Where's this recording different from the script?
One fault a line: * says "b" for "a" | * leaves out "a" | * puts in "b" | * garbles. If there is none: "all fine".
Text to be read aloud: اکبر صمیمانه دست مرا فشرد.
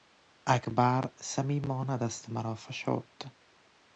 all fine